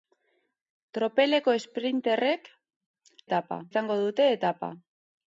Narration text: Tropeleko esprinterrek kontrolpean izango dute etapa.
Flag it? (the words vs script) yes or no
yes